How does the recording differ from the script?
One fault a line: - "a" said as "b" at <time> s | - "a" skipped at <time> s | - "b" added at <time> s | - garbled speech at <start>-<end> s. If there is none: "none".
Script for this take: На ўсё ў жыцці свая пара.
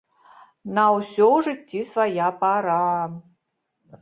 none